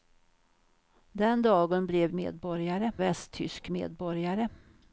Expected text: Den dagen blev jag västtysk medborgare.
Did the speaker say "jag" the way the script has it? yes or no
no